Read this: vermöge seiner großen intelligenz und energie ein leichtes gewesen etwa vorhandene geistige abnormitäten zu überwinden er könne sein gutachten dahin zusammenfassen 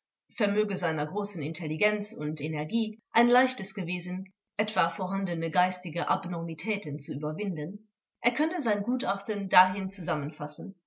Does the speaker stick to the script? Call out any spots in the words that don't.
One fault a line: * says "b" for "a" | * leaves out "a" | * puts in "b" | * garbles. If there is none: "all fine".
all fine